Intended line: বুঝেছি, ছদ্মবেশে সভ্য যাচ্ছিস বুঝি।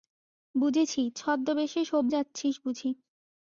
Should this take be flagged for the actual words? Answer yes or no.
no